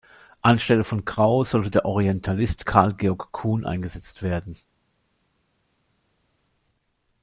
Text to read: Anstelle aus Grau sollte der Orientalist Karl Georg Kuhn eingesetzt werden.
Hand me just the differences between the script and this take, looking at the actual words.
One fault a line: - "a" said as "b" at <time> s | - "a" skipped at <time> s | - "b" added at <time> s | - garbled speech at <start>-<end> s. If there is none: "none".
- "aus" said as "von" at 0.8 s